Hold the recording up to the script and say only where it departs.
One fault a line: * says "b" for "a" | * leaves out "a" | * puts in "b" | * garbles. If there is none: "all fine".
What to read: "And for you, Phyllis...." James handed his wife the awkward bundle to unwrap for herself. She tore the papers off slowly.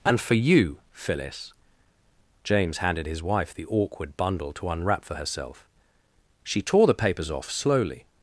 all fine